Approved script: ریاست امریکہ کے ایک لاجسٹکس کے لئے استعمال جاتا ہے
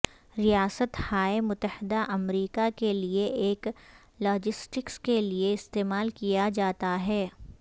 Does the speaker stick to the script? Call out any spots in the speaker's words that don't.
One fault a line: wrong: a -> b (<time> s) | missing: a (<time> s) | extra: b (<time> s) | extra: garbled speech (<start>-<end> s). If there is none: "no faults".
extra: ہائے متحدہ (1.0 s)
extra: لئے (2.9 s)
extra: کیا (6.2 s)